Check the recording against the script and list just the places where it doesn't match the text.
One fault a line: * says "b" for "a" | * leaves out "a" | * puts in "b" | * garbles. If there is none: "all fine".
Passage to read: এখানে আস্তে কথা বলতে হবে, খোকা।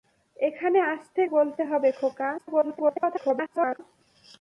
* leaves out "কথা"
* garbles